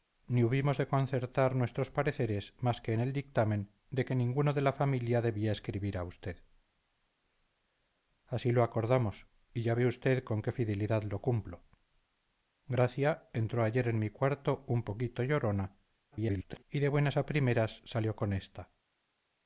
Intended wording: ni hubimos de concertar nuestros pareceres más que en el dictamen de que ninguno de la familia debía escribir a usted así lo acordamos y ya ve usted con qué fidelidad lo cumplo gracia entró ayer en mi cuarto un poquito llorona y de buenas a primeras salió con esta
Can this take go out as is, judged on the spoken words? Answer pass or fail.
fail